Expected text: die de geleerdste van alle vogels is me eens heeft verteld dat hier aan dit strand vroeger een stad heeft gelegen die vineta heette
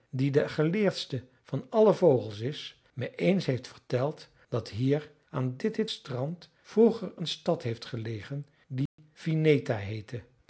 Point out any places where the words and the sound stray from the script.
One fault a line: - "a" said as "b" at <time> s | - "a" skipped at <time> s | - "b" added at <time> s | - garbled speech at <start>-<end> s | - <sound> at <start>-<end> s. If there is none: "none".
- "dit" added at 5.7 s
- dropout at 8.9-9.0 s